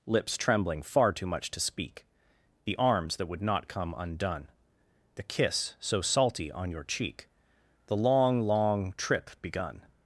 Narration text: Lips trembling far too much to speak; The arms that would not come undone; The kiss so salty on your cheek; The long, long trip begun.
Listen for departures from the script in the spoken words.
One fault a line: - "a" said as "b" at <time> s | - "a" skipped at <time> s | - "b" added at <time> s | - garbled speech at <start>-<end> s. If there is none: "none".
none